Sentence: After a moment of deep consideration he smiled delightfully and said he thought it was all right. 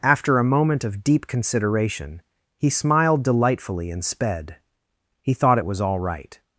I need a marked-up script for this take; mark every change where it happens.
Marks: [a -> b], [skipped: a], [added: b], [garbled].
After a moment of deep consideration he smiled delightfully and [said -> sped] he thought it was all right.